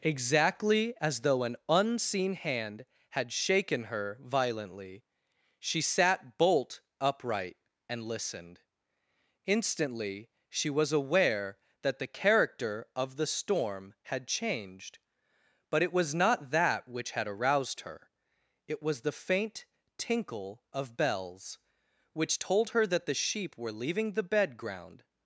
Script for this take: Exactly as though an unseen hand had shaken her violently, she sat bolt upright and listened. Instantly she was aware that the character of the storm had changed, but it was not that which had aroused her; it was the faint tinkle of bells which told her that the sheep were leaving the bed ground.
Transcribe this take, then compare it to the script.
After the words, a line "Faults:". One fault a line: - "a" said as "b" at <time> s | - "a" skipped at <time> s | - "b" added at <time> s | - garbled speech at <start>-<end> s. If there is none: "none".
Exactly as though an unseen hand had shaken her violently, she sat bolt upright and listened. Instantly she was aware that the character of the storm had changed, but it was not that which had aroused her; it was the faint tinkle of bells which told her that the sheep were leaving the bed ground.
Faults:
none